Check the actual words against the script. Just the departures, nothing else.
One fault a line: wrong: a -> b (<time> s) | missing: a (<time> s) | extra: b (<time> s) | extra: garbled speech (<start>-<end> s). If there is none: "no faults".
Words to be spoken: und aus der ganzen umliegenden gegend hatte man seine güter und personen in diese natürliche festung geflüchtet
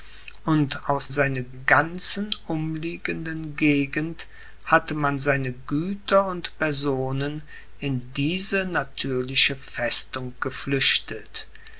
wrong: der -> seine (1.1 s)